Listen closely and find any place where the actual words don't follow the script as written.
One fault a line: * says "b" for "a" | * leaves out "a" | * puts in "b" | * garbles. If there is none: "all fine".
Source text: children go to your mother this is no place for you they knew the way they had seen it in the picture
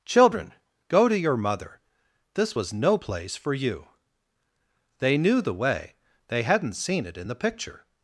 * says "was" for "is"
* says "hadn't" for "had"